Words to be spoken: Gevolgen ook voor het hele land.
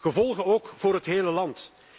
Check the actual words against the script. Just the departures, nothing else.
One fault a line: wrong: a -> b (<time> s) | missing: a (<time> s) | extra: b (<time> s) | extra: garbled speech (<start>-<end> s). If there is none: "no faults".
no faults